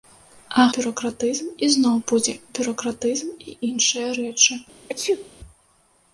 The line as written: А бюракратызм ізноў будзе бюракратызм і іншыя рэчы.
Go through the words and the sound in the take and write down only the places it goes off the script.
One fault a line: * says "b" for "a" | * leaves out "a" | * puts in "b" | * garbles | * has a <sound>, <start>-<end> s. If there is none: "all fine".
* has a sneeze, 4.9-5.3 s